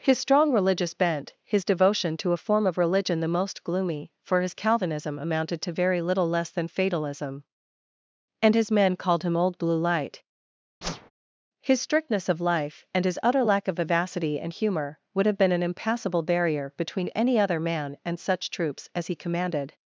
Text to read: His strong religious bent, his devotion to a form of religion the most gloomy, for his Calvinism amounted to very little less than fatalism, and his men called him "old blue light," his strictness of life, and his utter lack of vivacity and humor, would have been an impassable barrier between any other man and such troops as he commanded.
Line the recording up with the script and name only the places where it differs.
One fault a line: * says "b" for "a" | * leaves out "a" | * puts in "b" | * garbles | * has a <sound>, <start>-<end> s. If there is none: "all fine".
* has a whoosh, 10.8-11.1 s